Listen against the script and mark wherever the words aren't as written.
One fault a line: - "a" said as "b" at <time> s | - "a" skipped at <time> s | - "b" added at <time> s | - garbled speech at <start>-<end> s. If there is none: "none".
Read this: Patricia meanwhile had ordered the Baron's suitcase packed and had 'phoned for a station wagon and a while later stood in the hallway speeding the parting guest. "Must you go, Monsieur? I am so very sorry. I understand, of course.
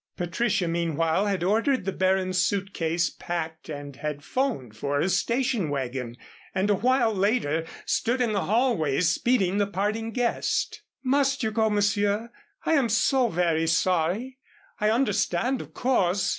none